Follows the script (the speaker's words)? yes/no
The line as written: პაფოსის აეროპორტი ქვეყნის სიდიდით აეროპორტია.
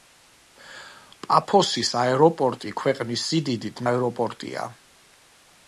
yes